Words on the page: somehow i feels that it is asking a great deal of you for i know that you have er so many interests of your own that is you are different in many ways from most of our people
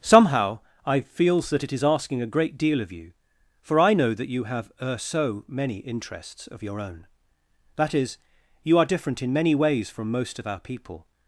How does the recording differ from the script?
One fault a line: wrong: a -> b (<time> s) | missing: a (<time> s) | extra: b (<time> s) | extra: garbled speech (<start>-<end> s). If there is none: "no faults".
no faults